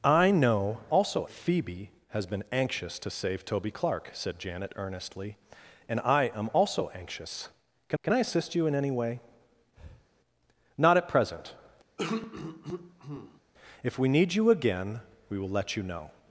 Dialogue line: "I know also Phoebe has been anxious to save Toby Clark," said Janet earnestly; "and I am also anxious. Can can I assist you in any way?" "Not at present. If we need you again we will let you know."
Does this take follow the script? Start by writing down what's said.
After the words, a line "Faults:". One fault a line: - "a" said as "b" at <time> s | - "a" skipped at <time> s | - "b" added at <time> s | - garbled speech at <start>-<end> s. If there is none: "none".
"I know also Phoebe has been anxious to save Toby Clark," said Janet earnestly; "and I am also anxious. Can can I assist you in any way?" "Not at present. If we need you again we will let you know."
Faults:
none